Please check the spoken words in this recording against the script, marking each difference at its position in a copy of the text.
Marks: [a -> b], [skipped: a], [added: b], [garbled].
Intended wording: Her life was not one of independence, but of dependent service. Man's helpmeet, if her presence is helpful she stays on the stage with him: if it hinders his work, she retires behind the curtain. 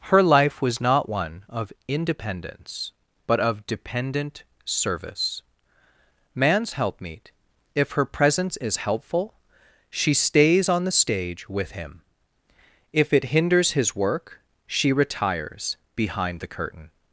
Her life was not one of independence, but of dependent service. Man's helpmeet, if her presence is helpful she stays on the stage with him: if it hinders his work, she retires behind the curtain.